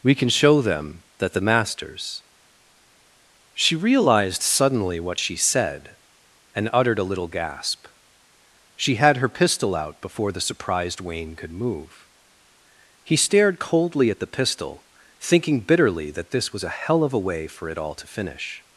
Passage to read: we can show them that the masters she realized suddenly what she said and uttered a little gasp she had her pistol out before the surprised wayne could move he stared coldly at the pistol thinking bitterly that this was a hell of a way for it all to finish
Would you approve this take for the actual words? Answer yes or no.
yes